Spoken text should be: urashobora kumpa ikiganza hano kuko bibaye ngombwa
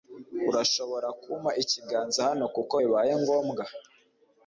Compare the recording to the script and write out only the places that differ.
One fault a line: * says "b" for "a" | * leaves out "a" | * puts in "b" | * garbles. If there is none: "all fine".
all fine